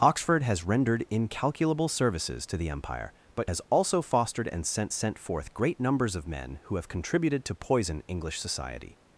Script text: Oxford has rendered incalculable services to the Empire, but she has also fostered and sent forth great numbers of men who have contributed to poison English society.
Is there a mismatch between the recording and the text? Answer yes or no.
yes